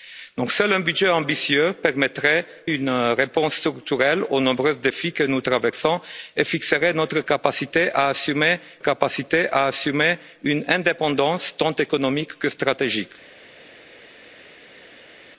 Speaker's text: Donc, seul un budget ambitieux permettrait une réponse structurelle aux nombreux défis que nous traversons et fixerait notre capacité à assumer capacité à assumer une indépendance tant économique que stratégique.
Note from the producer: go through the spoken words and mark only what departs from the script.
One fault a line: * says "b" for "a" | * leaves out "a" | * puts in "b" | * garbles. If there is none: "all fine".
all fine